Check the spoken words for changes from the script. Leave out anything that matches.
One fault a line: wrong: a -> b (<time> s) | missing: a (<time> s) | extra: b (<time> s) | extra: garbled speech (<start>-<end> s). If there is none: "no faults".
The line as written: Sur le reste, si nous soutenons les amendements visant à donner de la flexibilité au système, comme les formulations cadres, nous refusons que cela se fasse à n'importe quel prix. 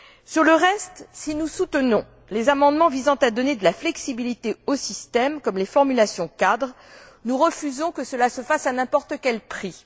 no faults